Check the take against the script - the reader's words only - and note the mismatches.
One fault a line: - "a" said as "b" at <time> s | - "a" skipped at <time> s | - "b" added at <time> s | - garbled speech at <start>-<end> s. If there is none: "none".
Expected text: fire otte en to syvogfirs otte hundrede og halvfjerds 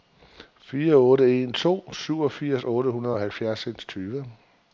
none